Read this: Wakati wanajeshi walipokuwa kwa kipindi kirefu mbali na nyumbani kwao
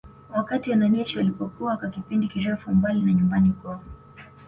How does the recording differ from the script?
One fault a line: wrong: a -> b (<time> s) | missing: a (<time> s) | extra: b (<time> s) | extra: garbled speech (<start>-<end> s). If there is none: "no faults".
no faults